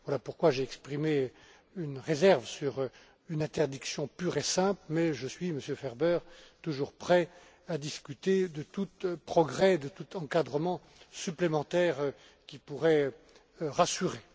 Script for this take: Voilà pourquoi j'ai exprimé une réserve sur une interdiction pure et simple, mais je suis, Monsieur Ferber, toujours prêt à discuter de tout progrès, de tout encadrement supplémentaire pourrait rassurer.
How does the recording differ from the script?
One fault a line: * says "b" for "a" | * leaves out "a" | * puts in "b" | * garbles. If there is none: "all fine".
* puts in "qui"